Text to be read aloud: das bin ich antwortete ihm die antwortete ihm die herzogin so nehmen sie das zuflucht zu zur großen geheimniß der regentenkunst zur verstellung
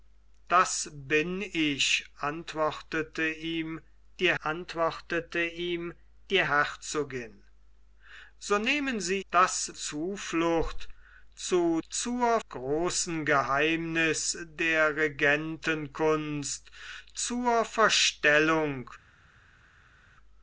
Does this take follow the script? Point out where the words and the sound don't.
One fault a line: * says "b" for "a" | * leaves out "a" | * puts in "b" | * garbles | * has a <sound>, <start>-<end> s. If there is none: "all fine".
all fine